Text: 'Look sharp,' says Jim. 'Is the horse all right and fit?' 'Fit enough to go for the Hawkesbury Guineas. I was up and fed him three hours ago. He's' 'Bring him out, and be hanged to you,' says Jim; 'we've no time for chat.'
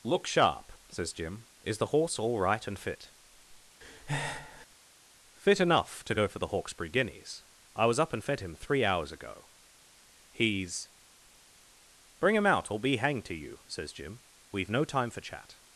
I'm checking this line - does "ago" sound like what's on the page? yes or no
yes